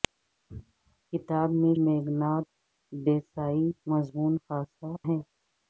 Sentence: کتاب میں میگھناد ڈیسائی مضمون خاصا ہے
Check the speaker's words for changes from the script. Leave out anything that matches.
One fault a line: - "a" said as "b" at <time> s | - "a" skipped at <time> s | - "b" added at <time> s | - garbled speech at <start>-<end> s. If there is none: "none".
none